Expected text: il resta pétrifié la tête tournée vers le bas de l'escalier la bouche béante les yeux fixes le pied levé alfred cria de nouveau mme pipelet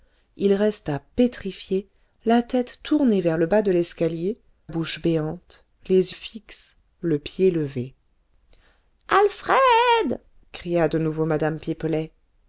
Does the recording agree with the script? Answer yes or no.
no